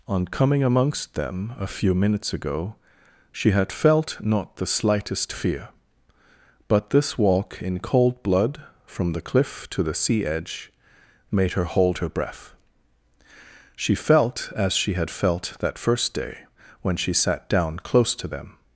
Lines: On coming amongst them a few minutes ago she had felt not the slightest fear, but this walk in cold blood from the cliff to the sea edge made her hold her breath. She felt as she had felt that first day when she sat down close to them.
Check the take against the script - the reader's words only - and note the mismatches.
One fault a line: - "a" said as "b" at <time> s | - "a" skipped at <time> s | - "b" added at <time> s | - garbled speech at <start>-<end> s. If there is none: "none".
none